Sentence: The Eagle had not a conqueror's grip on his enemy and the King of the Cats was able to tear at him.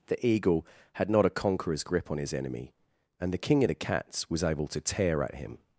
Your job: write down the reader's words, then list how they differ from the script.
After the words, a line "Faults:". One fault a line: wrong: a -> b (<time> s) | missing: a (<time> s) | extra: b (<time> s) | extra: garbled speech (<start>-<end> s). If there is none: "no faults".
The Eagle had not a conqueror's grip on his enemy and the King of the Cats was able to tear at him.
Faults:
no faults